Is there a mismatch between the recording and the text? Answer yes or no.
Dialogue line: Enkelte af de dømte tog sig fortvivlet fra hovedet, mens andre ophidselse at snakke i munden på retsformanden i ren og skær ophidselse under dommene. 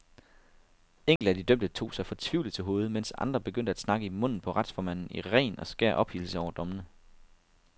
yes